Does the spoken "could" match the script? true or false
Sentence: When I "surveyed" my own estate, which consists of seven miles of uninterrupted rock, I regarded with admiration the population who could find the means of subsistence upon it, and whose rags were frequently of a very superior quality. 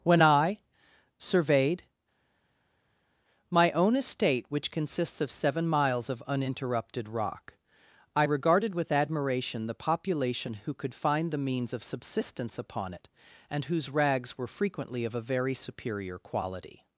true